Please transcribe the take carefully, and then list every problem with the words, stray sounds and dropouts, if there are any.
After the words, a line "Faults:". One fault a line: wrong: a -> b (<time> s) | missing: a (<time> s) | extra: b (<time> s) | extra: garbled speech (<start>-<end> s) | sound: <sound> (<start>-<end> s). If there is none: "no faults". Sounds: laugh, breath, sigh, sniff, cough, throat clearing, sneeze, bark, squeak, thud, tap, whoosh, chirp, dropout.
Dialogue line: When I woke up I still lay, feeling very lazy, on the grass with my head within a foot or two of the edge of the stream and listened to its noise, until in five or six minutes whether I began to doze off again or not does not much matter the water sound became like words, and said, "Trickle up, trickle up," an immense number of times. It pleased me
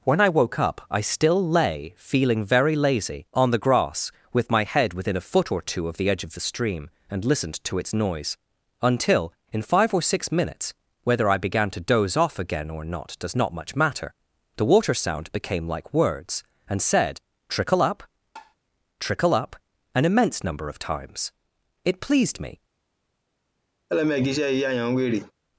When I woke up I still lay, feeling very lazy, on the grass with my head within a foot or two of the edge of the stream and listened to its noise, until in five or six minutes whether I began to doze off again or not does not much matter the water sound became like words, and said, "Trickle up, trickle up," an immense number of times. It pleased me
Faults:
sound: tap (18.4-18.6 s)
sound: laugh (23.9-25.3 s)